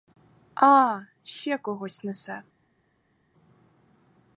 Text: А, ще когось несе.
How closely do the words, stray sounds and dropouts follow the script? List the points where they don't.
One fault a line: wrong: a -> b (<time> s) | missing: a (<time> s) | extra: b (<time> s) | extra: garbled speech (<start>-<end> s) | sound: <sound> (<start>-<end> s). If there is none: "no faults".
no faults